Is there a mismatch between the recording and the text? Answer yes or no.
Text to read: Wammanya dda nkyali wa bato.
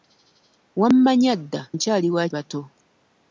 no